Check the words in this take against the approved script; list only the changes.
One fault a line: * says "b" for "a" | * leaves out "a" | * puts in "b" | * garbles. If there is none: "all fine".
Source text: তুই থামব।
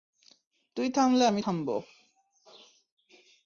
* puts in "থামলে আমি"